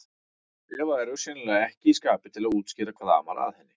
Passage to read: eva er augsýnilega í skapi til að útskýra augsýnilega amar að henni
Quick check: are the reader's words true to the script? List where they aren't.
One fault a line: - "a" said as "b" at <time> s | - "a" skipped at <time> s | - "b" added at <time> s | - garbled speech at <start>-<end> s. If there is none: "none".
- "ekki" added at 1.7 s
- "augsýnilega" said as "hvað" at 3.0 s